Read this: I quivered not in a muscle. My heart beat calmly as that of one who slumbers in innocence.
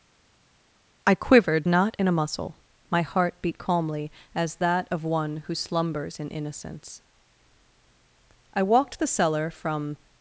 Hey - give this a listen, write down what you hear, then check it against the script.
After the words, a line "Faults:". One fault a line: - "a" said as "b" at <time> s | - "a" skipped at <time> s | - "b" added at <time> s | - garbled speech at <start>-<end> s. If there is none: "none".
I quivered not in a muscle. My heart beat calmly as that of one who slumbers in innocence. I walked the cellar from
Faults:
- "I walked the cellar from" added at 8.5 s